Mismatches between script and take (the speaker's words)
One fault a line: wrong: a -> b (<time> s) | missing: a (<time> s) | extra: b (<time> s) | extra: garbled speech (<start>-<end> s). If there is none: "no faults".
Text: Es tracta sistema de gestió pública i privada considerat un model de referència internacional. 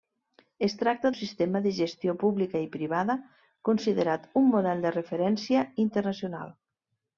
no faults